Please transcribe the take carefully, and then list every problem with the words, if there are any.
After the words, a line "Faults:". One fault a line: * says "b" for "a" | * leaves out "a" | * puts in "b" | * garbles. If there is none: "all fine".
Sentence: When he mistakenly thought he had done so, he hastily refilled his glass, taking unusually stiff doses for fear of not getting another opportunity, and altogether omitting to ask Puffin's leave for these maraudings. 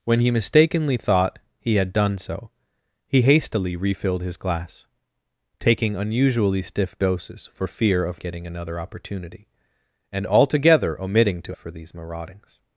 When he mistakenly thought he had done so, he hastily refilled his glass, taking unusually stiff doses for fear of getting another opportunity, and altogether omitting to for these maraudings.
Faults:
* leaves out "not"
* leaves out "ask Puffin's leave"